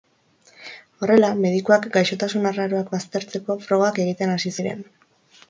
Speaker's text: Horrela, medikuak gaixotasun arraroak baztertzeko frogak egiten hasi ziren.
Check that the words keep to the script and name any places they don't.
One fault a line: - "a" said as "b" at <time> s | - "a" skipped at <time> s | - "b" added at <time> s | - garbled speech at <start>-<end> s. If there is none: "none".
none